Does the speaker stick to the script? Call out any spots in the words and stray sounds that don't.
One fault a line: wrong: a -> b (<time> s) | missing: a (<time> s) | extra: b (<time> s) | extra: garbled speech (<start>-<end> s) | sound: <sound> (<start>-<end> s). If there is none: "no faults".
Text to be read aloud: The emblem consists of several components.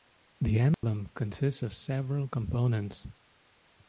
sound: dropout (0.7-0.8 s)